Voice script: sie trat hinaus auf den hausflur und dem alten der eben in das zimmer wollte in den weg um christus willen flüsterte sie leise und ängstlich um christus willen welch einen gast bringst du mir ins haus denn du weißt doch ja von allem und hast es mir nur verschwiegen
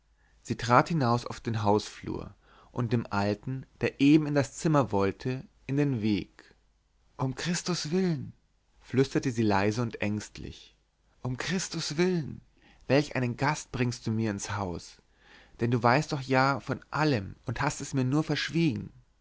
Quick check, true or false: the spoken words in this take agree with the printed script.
true